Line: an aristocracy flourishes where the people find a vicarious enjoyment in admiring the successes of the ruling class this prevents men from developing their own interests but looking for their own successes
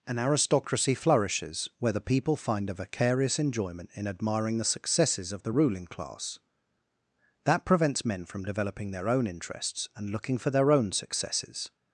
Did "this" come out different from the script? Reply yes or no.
yes